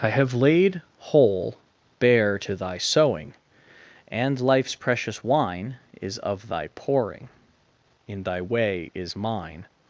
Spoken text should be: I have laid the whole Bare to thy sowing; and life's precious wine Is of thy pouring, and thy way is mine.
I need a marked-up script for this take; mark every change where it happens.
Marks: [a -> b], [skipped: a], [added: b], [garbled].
I have laid [skipped: the] whole Bare to thy sowing; and life's precious wine Is of thy pouring, [and -> in] thy way is mine.